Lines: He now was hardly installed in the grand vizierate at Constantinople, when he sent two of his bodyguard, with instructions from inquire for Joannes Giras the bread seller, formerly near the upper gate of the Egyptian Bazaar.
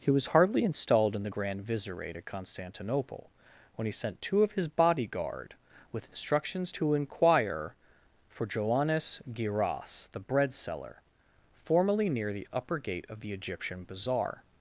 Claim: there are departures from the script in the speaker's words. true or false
true